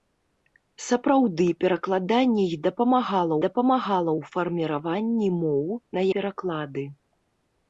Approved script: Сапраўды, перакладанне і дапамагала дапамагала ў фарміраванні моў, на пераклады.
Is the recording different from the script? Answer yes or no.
no